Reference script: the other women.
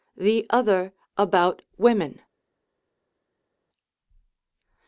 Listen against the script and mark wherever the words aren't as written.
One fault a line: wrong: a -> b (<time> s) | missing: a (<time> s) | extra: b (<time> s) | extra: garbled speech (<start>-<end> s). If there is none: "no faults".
extra: about (1.1 s)